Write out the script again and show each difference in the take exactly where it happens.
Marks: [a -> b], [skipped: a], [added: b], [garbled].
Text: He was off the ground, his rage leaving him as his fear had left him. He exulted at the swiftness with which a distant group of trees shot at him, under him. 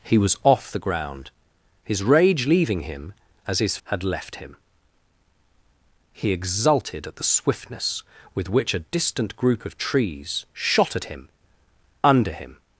He was off the ground, his rage leaving him as his [skipped: fear] had left him. He exulted at the swiftness with which a distant group of trees shot at him, under him.